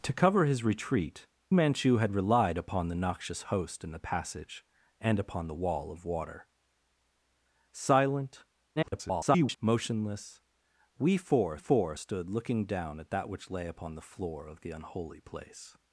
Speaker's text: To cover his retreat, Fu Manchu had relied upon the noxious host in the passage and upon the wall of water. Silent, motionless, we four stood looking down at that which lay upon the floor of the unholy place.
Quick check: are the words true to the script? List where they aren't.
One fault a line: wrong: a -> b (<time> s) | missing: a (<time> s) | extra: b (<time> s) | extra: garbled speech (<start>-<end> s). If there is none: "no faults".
missing: Fu (1.3 s)
extra: garbled speech (8.8-9.6 s)
extra: four (11.5 s)